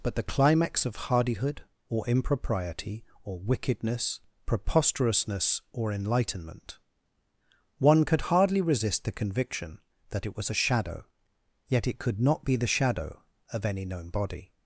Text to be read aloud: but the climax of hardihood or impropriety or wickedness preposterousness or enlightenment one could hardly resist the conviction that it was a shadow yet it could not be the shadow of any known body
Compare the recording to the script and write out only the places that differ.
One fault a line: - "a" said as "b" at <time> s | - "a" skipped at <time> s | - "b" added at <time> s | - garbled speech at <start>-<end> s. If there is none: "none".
none